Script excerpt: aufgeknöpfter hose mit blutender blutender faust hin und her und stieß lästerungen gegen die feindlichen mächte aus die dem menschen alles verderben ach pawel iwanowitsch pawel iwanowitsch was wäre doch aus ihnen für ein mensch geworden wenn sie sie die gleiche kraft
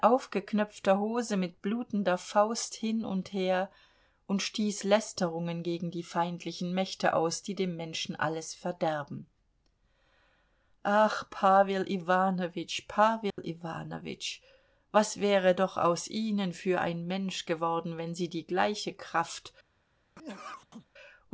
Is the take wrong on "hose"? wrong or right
right